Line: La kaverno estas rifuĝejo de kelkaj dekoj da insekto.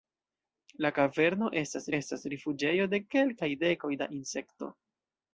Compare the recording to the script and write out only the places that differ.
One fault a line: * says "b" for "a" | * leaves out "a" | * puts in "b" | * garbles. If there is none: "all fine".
* puts in "estas"